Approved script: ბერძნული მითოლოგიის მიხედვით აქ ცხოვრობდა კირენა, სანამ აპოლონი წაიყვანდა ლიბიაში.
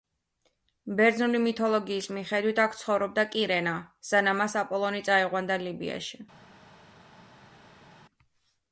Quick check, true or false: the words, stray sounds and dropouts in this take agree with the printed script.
false